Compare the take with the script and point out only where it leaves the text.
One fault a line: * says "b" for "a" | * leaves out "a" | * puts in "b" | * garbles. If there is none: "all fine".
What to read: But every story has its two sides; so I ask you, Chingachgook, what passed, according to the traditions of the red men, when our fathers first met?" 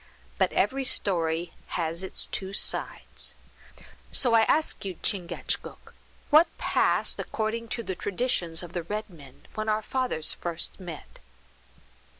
all fine